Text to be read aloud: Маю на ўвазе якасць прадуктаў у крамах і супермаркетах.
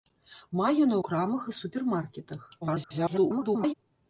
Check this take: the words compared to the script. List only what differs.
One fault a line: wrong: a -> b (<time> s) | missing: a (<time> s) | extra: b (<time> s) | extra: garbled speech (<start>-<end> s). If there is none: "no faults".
missing: ўвазе якасць прадуктаў (1.0 s)
extra: garbled speech (2.6-3.7 s)